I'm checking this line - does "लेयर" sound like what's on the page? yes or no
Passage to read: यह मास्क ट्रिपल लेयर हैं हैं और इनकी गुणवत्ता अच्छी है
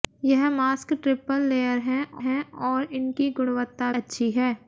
yes